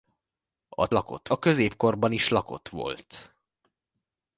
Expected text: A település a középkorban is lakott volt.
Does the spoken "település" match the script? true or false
false